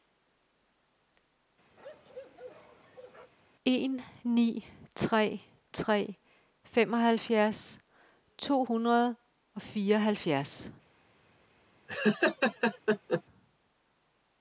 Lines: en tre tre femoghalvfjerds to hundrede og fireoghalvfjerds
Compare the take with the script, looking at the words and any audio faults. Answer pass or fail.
fail